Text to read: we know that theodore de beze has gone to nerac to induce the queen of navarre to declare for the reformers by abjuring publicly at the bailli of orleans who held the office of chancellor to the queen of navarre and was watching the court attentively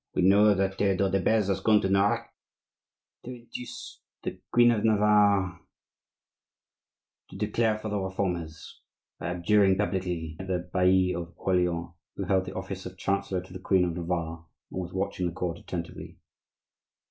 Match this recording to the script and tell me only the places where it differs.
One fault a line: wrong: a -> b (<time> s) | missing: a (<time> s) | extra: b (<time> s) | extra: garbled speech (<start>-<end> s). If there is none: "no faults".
no faults